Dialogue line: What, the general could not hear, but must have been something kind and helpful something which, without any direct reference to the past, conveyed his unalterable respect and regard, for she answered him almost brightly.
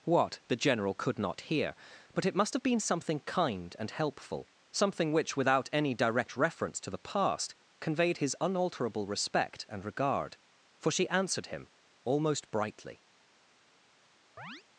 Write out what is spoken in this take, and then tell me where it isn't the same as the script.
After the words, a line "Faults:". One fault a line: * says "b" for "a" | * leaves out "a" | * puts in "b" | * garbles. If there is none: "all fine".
What, the general could not hear, but it must have been something kind and helpful something which, without any direct reference to the past, conveyed his unalterable respect and regard, for she answered him almost brightly.
Faults:
* puts in "it"